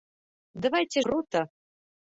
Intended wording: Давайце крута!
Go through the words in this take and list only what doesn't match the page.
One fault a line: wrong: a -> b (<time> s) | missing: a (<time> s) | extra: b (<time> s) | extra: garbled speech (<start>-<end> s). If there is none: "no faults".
no faults